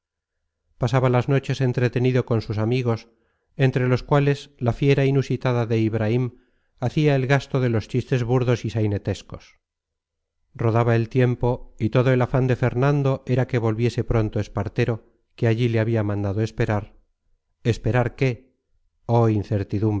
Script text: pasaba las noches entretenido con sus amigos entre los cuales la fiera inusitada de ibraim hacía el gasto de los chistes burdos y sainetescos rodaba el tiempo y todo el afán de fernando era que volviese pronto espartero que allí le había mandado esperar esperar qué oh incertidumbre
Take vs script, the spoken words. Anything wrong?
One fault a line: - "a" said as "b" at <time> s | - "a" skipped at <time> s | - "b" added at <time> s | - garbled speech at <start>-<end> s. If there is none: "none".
none